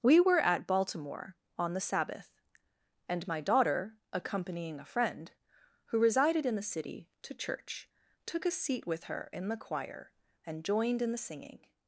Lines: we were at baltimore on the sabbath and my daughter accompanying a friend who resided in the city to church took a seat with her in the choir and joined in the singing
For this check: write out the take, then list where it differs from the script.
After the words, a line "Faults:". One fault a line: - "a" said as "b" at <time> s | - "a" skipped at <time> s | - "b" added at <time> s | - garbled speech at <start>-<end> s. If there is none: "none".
we were at baltimore on the sabbath and my daughter accompanying a friend who resided in the city to church took a seat with her in the choir and joined in the singing
Faults:
none